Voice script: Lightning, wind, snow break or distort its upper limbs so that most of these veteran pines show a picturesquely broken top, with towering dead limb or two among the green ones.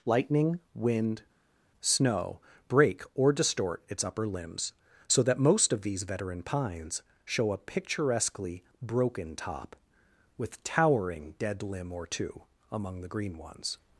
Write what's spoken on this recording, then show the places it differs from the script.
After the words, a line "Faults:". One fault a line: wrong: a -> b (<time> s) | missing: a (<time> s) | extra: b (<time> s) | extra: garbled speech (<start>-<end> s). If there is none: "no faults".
Lightning, wind, snow break or distort its upper limbs so that most of these veteran pines show a picturesquely broken top, with towering dead limb or two among the green ones.
Faults:
no faults